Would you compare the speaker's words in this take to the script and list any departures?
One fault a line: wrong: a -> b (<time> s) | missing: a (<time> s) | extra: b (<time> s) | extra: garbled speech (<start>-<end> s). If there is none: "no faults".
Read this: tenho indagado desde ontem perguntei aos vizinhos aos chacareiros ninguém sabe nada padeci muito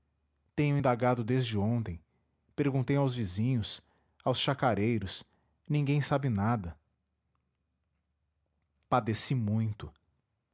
no faults